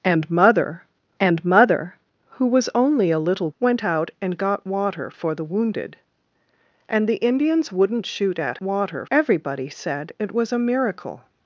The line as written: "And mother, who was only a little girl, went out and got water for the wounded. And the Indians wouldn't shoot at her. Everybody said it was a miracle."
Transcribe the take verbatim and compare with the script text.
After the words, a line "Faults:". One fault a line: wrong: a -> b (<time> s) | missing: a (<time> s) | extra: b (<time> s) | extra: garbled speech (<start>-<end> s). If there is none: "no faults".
"And mother and mother, who was only a little went out and got water for the wounded. And the Indians wouldn't shoot at water. Everybody said it was a miracle."
Faults:
extra: and mother (1.2 s)
missing: girl (3.5 s)
wrong: her -> water (8.6 s)